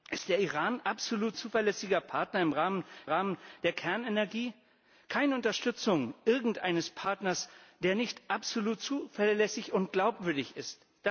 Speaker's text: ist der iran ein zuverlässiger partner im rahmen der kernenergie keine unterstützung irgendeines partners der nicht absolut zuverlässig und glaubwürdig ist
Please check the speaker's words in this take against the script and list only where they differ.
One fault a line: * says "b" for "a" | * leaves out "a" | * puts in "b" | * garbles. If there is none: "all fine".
* says "absolut" for "ein"
* puts in "rahmen"